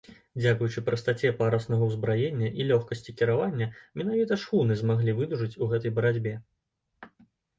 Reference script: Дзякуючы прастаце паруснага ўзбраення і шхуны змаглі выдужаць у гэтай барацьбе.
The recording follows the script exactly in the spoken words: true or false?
false